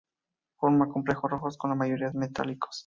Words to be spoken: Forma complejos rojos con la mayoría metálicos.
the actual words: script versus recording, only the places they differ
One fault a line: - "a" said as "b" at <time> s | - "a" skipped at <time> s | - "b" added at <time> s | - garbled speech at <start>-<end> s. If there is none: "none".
none